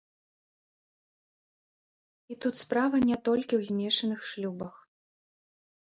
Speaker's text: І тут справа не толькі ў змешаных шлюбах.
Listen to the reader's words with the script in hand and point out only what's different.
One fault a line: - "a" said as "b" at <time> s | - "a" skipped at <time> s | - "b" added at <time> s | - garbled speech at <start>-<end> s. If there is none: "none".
none